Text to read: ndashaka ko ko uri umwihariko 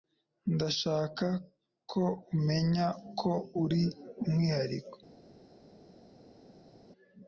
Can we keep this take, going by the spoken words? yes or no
no